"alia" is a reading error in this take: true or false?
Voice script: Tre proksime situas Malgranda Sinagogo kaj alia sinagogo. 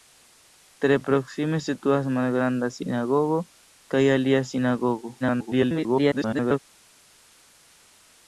false